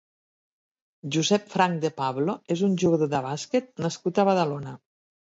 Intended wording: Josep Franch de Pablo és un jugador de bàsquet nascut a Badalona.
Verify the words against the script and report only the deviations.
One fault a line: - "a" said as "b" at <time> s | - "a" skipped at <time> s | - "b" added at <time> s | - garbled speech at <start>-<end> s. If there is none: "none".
none